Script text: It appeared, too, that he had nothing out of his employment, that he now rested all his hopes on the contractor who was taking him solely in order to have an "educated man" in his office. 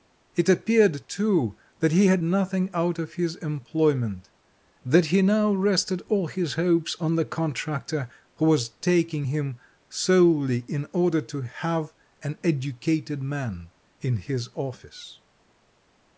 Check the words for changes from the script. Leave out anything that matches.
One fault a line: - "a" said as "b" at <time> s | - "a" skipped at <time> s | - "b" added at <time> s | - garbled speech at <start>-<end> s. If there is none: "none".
none